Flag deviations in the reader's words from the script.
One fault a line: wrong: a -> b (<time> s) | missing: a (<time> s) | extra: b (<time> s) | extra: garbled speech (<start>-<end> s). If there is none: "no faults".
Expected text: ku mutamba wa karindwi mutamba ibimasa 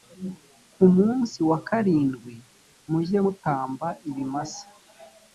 wrong: mutamba -> munsi (1.0 s)
extra: mujye (2.9 s)